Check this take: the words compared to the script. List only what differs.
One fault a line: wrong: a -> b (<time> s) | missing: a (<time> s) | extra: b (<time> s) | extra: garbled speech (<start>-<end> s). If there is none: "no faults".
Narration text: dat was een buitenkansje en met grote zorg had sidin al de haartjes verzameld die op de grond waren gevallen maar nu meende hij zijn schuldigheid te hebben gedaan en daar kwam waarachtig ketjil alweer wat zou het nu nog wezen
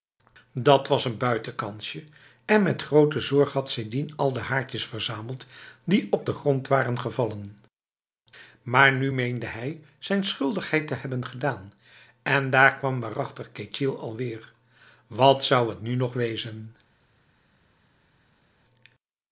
no faults